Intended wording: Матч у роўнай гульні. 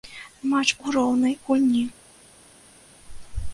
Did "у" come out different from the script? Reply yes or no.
no